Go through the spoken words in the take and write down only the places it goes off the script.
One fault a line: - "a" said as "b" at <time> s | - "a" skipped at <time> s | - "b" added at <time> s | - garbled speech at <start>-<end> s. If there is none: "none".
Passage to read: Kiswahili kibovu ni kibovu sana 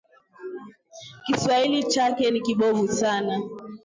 - "kibovu" said as "chake" at 1.8 s